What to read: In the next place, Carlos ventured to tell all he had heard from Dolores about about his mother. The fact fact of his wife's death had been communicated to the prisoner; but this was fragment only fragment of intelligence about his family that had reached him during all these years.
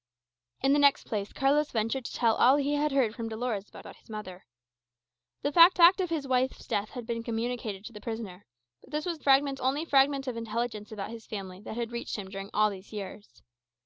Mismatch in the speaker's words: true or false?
false